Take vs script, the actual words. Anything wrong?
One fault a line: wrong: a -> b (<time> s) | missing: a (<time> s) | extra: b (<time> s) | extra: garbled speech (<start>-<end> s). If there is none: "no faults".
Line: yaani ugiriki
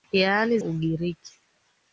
no faults